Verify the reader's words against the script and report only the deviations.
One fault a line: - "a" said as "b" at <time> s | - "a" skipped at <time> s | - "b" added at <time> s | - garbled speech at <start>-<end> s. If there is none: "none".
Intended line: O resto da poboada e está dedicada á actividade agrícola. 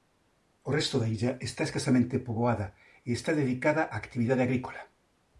- "illa está escasamente" added at 1.1 s